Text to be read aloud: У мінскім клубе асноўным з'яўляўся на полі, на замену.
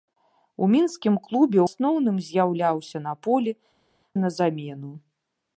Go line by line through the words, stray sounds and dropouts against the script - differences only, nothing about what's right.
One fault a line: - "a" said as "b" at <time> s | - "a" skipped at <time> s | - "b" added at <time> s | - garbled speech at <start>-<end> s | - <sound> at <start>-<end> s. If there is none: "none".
none